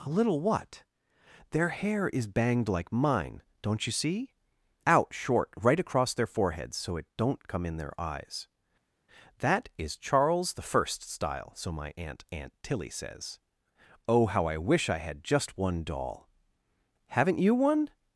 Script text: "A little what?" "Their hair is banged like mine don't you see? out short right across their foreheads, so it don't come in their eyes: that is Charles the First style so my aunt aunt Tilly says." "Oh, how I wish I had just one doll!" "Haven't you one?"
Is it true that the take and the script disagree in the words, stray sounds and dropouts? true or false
false